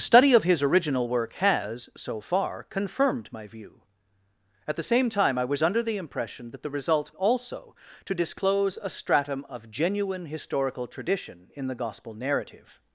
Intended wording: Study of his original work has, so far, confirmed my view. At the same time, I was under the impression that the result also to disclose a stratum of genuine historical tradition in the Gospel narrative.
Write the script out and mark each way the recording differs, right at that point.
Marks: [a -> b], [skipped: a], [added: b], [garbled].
Study of his original work has, so far, confirmed my view. At the same time, I was under the impression that the result also to disclose a stratum of genuine historical tradition in the Gospel narrative.